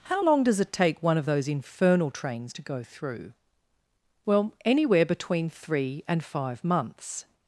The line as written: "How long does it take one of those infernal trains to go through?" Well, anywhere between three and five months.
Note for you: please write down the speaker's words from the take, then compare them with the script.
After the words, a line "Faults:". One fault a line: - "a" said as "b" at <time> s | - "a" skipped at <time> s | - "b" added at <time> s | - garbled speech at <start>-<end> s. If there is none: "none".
"How long does it take one of those infernal trains to go through?" Well, anywhere between three and five months.
Faults:
none